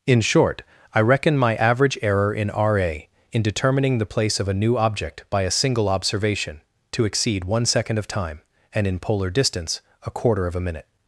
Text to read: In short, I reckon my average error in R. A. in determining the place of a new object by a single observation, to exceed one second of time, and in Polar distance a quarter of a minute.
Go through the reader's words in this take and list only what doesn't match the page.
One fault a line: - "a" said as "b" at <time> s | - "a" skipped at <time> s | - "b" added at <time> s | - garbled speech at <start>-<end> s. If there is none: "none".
none